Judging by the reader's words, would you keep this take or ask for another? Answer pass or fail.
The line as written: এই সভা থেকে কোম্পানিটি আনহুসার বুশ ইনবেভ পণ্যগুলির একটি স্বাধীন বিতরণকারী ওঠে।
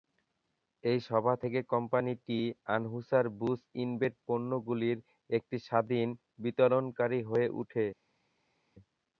fail